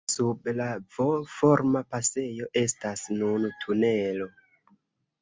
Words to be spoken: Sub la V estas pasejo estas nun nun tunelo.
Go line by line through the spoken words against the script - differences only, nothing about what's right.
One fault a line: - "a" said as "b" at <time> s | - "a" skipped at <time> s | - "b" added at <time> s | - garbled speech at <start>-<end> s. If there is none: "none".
- "estas" said as "forma" at 1.3 s
- "nun" skipped at 3.5 s